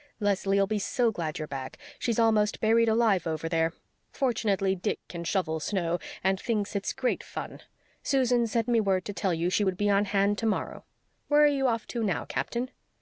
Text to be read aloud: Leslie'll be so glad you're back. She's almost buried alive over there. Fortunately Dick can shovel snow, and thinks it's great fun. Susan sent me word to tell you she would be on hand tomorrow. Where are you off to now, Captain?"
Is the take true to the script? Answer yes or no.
yes